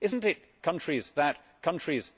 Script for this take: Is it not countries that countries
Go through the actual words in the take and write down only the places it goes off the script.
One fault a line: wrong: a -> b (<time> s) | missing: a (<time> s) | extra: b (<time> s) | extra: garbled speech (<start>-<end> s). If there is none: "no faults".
no faults